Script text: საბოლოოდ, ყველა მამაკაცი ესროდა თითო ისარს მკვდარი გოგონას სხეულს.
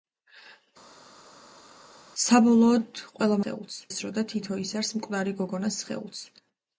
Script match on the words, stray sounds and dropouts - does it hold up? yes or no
no